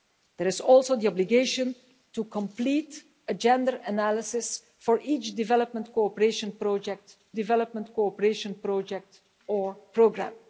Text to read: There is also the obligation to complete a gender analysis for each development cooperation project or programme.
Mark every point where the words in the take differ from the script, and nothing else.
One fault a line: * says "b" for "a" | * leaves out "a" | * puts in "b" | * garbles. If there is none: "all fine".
* puts in "development cooperation project"